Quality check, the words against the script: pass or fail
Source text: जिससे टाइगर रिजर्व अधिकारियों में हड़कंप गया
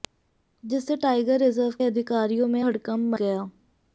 pass